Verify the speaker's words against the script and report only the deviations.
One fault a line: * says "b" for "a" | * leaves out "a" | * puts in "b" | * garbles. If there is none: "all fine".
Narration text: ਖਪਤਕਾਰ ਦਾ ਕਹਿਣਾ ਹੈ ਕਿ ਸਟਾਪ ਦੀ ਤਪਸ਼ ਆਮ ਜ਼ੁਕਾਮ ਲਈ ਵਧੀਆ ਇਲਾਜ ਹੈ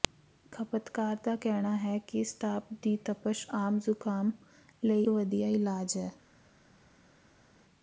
all fine